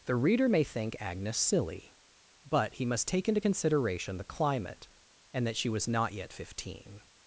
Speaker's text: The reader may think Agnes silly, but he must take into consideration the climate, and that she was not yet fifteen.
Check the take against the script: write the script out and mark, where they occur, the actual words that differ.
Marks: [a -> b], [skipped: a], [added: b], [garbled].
The reader may think Agnes silly, but he must take into consideration the climate, and that she was not yet fifteen.